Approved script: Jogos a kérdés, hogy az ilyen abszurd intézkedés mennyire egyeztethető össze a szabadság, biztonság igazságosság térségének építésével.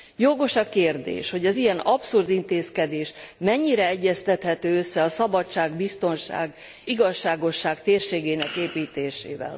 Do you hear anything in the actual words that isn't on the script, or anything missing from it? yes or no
no